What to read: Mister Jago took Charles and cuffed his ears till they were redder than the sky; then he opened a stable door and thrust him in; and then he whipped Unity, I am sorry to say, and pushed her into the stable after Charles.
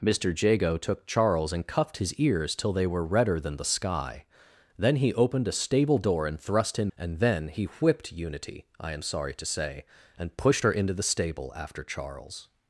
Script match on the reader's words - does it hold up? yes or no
no